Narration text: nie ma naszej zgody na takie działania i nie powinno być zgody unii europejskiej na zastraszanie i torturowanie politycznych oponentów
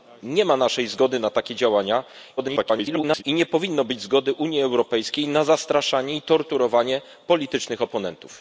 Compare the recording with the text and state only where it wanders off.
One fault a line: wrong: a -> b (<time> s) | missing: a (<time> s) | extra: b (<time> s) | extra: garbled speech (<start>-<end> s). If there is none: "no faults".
extra: garbled speech (2.4-3.2 s)